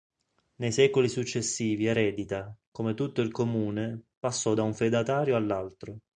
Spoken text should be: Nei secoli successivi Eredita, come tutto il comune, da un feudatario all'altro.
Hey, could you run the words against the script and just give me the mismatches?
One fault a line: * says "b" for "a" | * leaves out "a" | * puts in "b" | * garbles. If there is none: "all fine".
* puts in "passò"